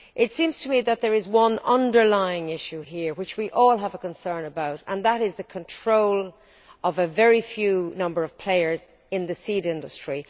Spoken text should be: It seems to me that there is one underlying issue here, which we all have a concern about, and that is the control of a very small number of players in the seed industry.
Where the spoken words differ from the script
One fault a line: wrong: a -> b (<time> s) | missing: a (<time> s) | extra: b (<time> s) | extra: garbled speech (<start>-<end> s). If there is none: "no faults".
no faults